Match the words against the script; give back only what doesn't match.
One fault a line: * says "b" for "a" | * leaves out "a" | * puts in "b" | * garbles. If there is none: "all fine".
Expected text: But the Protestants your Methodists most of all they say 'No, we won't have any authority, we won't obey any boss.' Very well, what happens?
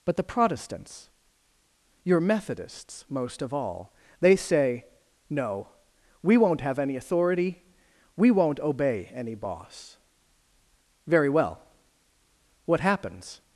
all fine